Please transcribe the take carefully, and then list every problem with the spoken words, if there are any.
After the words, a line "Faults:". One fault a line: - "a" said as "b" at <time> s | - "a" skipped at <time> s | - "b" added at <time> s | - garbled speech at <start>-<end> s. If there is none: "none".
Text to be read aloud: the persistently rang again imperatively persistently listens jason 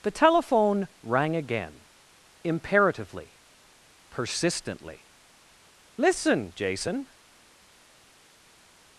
the telephone rang again imperatively persistently listen jason
Faults:
- "persistently" said as "telephone" at 0.1 s
- "listens" said as "listen" at 6.0 s